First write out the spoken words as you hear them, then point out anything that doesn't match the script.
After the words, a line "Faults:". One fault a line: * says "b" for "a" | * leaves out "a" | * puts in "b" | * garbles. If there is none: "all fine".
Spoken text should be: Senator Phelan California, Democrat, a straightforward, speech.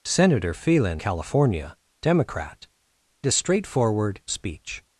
Senator Phelan California, Democrat, a straightforward, speech.
Faults:
all fine